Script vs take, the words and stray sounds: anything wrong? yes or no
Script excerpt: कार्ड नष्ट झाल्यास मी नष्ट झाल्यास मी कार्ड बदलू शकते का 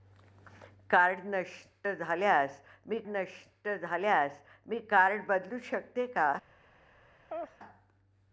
yes